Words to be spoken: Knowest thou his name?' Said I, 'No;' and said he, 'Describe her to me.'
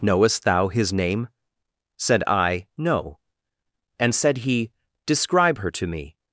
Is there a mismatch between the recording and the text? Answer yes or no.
no